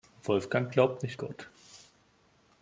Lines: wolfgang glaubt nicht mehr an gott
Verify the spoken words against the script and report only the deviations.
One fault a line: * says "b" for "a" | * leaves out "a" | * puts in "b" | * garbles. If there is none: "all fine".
* leaves out "mehr an"